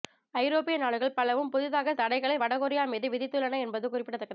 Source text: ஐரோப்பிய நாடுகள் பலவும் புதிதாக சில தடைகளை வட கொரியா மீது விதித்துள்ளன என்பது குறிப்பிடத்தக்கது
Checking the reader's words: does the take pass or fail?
fail